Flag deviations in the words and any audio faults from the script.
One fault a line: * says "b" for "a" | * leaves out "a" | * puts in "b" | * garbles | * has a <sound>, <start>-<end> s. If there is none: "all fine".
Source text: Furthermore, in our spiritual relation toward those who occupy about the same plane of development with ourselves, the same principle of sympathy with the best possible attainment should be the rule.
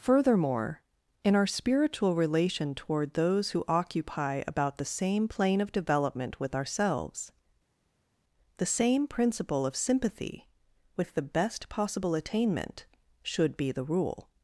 all fine